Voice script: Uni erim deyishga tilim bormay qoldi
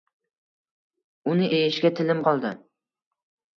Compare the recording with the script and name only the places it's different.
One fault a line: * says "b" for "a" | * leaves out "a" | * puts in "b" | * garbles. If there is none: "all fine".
* leaves out "erim"
* leaves out "bormay"